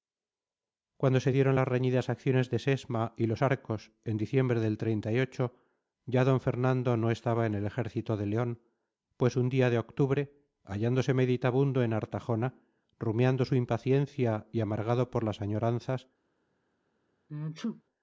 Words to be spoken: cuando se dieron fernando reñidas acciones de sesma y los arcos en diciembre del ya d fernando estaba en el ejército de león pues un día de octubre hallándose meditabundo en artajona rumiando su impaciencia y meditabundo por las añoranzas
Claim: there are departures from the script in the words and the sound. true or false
true